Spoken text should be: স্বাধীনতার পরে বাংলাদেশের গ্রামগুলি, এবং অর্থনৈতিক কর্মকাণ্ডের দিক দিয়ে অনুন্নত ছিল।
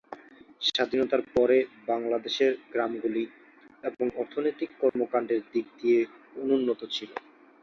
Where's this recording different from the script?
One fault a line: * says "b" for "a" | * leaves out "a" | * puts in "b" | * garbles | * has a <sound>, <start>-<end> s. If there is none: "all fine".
* has a dropout, 4.9-5.0 s